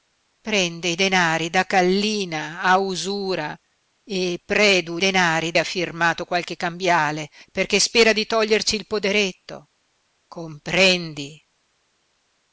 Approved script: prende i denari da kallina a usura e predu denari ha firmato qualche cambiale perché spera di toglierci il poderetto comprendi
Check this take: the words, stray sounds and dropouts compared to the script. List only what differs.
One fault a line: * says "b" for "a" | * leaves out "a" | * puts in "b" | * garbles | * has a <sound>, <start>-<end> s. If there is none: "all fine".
all fine